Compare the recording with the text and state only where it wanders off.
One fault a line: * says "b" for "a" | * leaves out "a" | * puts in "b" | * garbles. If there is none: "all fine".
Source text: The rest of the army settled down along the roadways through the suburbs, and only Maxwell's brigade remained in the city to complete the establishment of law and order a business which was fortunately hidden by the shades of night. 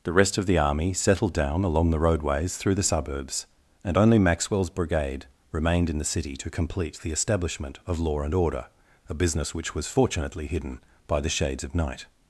all fine